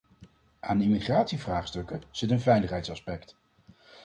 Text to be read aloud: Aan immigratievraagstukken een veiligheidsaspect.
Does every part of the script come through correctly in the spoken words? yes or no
no